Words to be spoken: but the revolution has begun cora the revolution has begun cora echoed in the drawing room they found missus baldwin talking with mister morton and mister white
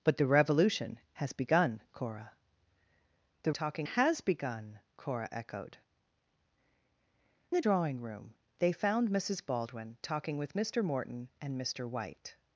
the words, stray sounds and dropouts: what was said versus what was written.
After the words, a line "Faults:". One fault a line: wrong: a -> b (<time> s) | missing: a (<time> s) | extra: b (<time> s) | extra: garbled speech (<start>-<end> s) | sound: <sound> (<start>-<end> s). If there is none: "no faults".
but the revolution has begun cora the talking has begun cora echoed the drawing room they found missus baldwin talking with mister morton and mister white
Faults:
wrong: revolution -> talking (3.5 s)
missing: in (5.8 s)